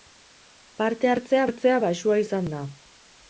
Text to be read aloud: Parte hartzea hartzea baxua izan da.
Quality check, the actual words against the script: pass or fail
pass